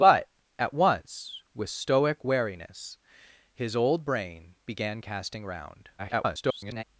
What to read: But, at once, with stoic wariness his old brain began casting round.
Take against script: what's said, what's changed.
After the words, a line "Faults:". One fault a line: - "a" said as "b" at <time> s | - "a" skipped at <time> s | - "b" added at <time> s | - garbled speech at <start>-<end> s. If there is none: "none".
But, at once, with stoic wariness his old brain began casting round. [garbled]
Faults:
- garbled speech at 6.0-6.8 s